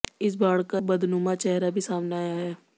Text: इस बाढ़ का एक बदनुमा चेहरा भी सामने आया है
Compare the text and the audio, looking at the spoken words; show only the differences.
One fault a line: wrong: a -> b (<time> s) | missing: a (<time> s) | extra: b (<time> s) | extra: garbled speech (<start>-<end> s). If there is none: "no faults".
missing: एक (0.8 s)